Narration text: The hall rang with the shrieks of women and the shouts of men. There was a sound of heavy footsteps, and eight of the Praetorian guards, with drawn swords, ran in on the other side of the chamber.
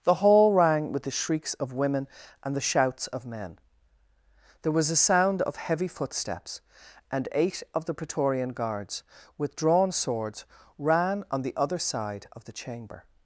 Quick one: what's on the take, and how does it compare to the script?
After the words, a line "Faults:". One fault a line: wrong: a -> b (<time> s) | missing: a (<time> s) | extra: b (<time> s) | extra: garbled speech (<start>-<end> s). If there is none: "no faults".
The hall rang with the shrieks of women and the shouts of men. There was a sound of heavy footsteps, and eight of the Praetorian guards, with drawn swords, ran on the other side of the chamber.
Faults:
missing: in (11.2 s)